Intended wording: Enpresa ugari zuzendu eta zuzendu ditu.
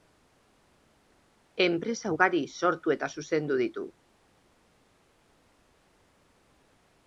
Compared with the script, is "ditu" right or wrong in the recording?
right